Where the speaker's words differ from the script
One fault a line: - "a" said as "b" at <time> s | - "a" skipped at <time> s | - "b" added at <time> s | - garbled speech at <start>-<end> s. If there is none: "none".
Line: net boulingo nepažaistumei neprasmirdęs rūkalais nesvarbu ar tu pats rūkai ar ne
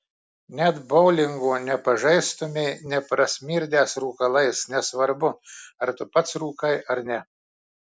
none